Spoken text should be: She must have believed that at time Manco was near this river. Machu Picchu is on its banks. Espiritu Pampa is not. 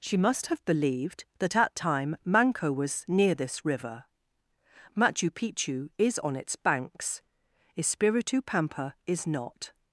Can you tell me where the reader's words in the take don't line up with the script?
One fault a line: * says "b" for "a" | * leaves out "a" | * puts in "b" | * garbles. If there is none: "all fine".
all fine